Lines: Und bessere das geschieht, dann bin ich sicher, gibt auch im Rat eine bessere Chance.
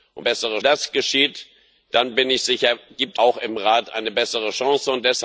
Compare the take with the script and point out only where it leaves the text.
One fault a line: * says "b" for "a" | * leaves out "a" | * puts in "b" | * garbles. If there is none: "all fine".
all fine